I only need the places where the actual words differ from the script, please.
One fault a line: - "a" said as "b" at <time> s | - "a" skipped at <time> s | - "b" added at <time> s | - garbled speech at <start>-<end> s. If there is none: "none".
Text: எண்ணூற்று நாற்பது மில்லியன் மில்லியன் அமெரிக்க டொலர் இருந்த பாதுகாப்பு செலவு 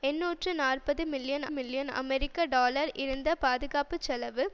none